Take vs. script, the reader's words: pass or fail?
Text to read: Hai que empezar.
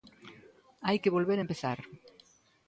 fail